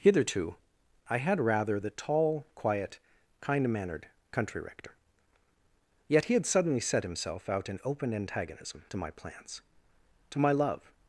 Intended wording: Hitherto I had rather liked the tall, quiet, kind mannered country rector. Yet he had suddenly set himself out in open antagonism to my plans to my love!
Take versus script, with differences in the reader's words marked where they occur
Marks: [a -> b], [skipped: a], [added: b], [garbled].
Hitherto I had rather [skipped: liked] the tall, quiet, kind mannered country rector. Yet he had suddenly set himself out in open antagonism to my plans to my love!